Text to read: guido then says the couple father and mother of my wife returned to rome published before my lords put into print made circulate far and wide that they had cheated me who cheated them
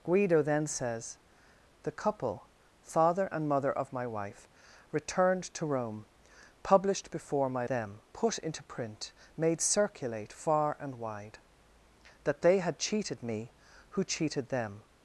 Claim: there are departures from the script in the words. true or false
true